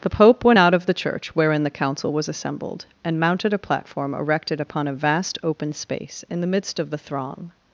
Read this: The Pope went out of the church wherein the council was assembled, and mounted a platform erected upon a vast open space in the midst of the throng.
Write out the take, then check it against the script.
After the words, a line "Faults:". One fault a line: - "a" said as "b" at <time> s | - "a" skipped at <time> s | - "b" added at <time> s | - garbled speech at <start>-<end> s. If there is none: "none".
The Pope went out of the church wherein the council was assembled, and mounted a platform erected upon a vast open space in the midst of the throng.
Faults:
none